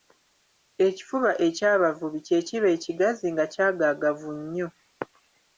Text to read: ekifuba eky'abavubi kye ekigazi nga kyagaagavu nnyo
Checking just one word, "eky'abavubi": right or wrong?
right